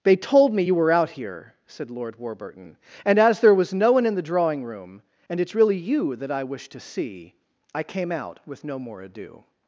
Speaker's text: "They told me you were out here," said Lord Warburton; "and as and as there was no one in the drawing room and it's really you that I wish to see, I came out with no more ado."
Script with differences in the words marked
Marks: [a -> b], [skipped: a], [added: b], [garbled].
"They told me you were out here," said Lord Warburton; "and as [skipped: and as] there was no one in the drawing room and it's really you that I wish to see, I came out with no more ado."